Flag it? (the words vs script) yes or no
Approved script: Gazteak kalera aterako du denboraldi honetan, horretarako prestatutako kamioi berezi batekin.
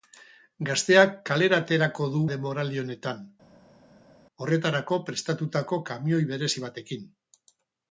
no